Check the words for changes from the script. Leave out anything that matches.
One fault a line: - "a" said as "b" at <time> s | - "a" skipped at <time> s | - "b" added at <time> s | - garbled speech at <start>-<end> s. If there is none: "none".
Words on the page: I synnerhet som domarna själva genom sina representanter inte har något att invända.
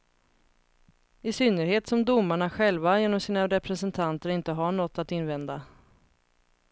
none